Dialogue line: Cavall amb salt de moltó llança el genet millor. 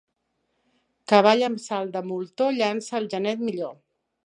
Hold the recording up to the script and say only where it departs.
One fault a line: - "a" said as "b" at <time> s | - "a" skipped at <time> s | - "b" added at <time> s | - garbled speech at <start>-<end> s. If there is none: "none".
none